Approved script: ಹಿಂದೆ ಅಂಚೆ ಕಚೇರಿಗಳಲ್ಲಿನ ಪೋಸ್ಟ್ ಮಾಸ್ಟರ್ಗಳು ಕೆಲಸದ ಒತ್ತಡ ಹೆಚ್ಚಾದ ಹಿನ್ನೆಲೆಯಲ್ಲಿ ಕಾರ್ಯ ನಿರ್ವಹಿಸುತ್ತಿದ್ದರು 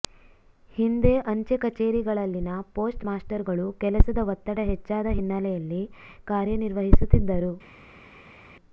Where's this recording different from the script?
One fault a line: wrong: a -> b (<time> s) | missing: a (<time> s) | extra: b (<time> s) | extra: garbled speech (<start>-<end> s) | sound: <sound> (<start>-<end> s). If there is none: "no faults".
no faults